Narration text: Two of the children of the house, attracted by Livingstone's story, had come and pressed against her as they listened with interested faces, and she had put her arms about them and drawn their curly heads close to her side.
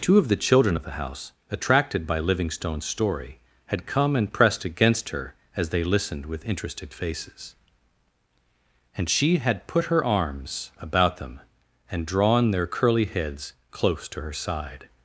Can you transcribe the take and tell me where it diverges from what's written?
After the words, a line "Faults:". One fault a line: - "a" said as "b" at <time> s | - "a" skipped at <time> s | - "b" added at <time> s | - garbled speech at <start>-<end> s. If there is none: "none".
Two of the children of the house, attracted by Livingstone's story, had come and pressed against her as they listened with interested faces, and she had put her arms about them and drawn their curly heads close to her side.
Faults:
none